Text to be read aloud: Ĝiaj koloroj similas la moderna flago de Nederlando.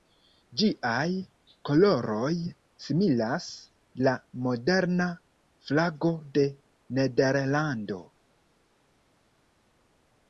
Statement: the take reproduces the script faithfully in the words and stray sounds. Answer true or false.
true